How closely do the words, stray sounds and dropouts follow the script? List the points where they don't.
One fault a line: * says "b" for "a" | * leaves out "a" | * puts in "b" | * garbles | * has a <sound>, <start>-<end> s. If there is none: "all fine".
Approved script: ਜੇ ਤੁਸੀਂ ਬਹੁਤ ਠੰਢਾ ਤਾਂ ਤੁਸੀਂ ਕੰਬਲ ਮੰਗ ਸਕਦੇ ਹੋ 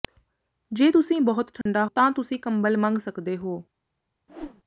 * has a dropout, 1.6-1.7 s
* has a whoosh, 4.3-4.6 s